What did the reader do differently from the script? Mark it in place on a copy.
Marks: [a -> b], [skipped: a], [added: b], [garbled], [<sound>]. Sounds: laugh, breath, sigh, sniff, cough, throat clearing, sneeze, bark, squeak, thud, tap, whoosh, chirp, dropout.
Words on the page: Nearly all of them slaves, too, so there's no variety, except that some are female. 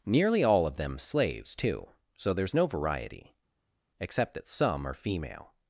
Nearly all of them slaves, too, so there's no variety, except that some are female.